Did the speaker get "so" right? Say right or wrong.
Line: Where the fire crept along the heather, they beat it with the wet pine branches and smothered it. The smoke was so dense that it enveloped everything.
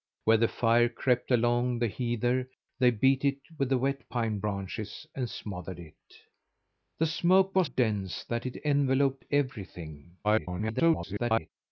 wrong